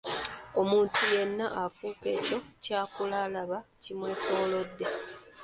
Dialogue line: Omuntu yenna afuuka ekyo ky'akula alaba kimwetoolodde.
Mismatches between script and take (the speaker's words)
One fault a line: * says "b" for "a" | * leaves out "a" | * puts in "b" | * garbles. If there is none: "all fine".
all fine